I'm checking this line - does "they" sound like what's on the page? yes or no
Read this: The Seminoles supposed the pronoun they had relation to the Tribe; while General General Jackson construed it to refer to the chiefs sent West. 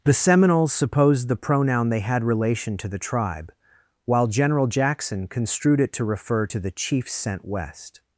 yes